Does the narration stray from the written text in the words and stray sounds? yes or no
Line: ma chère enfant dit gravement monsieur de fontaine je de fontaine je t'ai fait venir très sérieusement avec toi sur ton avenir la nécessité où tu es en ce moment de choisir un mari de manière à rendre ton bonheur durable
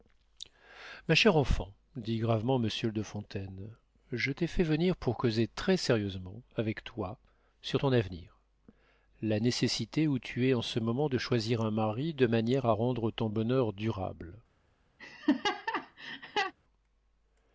yes